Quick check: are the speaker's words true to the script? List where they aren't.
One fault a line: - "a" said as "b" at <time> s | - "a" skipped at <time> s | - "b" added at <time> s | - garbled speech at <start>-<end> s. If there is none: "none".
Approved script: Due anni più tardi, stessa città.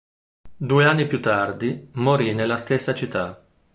- "morì nella" added at 2.0 s